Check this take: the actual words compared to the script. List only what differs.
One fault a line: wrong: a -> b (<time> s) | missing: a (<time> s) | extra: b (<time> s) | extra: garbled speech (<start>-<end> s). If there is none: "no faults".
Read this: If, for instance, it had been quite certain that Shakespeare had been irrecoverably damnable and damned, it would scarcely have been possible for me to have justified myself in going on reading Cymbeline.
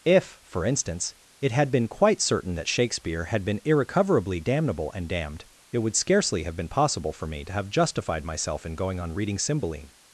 no faults